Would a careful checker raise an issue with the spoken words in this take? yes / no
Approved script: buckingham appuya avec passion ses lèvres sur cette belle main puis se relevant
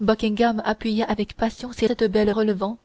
yes